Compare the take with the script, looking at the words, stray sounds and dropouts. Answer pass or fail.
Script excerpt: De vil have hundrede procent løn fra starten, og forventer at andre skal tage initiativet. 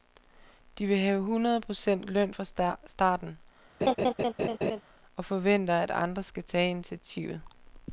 fail